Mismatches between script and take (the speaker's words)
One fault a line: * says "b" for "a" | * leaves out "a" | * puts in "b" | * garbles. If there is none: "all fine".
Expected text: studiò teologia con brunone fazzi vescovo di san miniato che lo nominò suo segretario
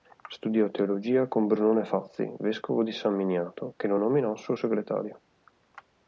all fine